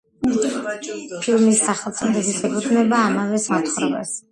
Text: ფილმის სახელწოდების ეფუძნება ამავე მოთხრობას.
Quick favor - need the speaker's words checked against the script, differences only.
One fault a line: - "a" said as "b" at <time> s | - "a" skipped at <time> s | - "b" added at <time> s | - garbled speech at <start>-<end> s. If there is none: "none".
none